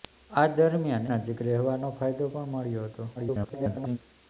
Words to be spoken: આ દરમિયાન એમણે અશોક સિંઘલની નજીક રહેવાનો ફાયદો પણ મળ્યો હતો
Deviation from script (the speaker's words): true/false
true